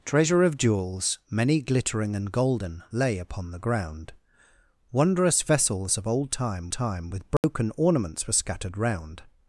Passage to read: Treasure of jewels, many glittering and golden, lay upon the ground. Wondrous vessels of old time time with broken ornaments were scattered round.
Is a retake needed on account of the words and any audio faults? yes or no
yes